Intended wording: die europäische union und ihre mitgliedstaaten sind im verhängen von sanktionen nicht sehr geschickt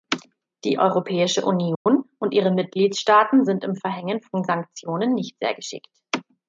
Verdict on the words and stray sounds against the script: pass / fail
fail